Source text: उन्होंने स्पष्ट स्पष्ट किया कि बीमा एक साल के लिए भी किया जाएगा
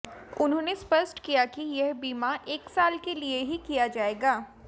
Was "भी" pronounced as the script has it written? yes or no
no